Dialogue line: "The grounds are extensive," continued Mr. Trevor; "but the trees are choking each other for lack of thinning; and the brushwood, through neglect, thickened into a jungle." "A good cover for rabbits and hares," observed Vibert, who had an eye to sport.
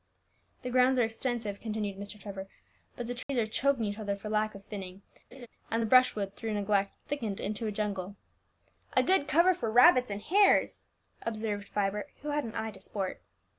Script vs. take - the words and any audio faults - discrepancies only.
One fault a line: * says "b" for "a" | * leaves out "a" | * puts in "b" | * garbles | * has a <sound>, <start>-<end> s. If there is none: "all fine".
* has a dropout, 3.2-3.3 s
* has a laugh, 5.3-5.5 s